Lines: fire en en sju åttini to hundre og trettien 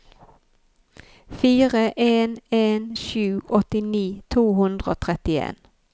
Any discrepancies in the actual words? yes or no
no